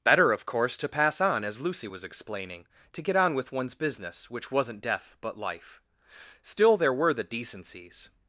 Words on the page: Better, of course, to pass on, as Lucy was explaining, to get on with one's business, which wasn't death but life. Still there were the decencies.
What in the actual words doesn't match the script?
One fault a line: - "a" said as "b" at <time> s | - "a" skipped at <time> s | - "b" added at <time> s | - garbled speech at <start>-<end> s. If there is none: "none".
none